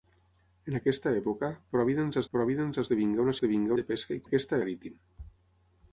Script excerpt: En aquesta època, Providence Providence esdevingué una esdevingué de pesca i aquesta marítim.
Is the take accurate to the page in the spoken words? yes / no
yes